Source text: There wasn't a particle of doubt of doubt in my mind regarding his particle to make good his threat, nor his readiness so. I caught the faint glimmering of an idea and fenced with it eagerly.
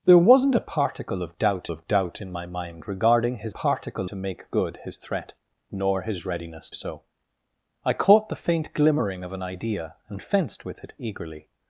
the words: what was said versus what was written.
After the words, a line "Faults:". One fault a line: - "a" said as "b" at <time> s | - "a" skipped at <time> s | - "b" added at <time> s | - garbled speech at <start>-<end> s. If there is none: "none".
There wasn't a particle of doubt of doubt in my mind regarding his particle to make good his threat, nor his readiness so. I caught the faint glimmering of an idea and fenced with it eagerly.
Faults:
none